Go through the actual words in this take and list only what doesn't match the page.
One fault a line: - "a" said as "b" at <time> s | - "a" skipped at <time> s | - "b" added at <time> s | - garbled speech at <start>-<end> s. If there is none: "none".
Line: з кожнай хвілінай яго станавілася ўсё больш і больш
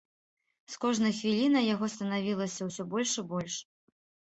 none